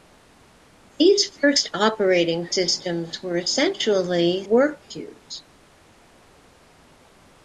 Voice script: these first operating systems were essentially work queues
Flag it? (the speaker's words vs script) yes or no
no